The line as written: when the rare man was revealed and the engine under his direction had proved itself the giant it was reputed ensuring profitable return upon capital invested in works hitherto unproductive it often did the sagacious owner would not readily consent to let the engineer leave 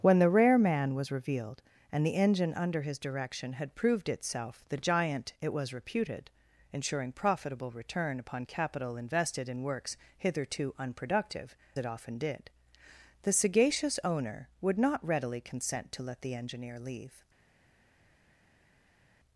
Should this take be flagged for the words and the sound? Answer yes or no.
no